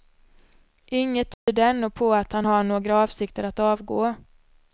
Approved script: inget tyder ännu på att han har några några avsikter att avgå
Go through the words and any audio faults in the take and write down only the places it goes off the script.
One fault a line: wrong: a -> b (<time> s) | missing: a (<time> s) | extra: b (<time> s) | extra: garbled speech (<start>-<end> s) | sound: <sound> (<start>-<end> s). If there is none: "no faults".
sound: dropout (1.3-1.5 s)
missing: några (3.0 s)